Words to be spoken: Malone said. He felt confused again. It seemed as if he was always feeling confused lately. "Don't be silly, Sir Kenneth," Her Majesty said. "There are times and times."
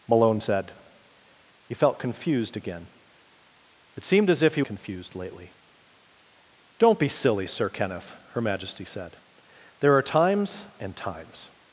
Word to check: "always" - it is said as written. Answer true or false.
false